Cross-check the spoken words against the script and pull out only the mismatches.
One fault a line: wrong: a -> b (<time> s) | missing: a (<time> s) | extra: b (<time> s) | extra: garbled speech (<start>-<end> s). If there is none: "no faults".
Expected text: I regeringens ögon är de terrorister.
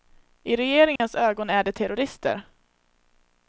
no faults